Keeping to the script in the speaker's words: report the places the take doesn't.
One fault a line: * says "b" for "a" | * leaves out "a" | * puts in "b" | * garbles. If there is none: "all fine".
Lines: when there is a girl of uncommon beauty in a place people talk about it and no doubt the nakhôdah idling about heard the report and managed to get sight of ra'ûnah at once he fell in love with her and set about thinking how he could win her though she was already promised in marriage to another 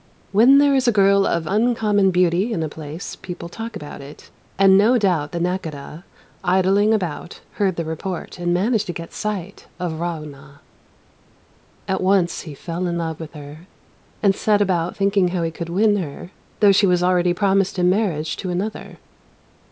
all fine